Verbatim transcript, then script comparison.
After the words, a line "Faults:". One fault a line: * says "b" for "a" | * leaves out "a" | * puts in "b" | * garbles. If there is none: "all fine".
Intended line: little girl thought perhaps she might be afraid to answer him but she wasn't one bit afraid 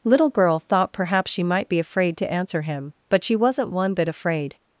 little girl thought perhaps she might be afraid to answer him but she wasn't one bit afraid
Faults:
all fine